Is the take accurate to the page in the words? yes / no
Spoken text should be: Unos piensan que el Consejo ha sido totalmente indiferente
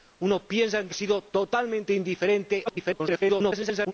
no